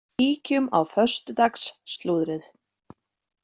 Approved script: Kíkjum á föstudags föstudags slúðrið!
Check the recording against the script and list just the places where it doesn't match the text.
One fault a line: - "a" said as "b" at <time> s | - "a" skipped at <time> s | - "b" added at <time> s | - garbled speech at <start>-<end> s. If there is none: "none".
- "föstudags" skipped at 1.7 s